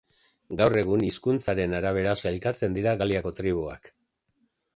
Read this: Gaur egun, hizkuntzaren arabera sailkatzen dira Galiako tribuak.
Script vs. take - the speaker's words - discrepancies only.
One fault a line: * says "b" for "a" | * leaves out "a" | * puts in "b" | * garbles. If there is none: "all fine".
all fine